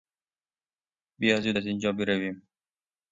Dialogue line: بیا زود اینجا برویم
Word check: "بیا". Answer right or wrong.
right